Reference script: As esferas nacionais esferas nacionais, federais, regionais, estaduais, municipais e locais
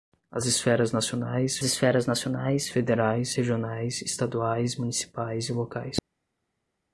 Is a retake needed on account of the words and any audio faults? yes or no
no